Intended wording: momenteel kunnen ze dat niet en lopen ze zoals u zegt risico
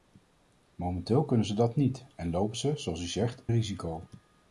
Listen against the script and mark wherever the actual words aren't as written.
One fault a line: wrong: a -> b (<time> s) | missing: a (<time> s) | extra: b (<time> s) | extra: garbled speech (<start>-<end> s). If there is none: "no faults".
no faults